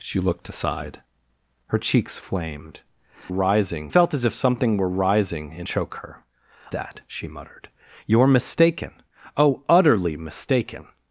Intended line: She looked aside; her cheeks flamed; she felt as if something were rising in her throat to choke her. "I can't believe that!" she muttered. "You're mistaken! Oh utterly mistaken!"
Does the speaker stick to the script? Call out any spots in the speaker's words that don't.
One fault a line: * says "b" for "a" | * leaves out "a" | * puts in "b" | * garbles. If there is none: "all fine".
* says "rising" for "she"
* leaves out "her throat to"
* leaves out "I can't believe"